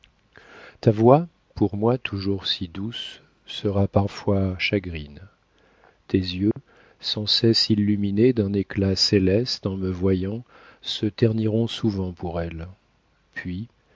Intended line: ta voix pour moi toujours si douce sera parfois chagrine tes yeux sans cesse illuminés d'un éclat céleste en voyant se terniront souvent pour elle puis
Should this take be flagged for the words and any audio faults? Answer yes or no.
yes